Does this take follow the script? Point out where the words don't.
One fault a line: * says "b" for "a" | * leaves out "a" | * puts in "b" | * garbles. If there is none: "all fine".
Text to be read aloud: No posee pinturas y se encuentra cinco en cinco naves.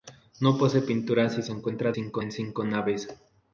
all fine